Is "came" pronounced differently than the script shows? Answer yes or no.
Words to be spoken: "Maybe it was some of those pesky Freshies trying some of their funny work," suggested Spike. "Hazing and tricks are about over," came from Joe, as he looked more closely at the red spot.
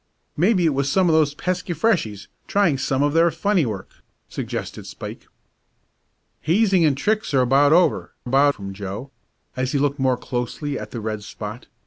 yes